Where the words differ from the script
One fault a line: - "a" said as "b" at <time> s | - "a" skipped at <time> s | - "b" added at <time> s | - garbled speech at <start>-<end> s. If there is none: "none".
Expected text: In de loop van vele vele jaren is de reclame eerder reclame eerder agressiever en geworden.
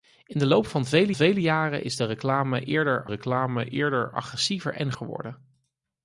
none